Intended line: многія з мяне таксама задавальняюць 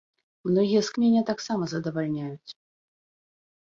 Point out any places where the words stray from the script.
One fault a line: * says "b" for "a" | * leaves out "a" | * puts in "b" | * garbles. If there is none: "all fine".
all fine